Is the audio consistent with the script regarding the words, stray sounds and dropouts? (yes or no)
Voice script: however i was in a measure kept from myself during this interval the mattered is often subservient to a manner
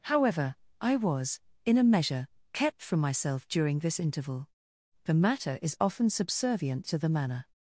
no